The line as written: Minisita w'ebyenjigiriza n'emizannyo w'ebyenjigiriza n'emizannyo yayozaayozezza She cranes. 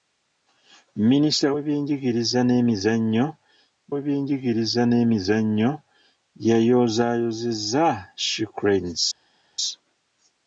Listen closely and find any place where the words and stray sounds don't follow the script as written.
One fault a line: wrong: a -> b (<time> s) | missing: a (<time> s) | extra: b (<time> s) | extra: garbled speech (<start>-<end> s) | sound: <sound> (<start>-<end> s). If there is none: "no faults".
no faults